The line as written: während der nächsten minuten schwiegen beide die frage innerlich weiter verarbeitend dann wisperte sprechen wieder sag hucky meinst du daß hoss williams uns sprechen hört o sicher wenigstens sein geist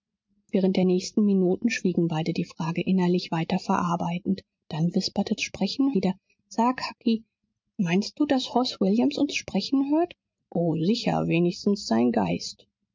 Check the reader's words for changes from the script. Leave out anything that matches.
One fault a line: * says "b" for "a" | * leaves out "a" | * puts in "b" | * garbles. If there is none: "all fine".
all fine